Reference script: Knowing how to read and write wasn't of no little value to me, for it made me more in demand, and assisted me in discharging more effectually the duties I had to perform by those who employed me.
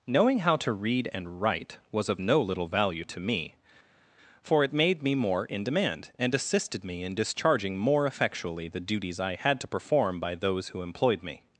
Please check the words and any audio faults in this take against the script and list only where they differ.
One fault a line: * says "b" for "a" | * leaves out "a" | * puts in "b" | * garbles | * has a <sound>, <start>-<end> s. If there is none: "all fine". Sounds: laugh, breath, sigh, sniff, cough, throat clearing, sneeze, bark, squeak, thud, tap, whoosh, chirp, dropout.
* says "was" for "wasn't"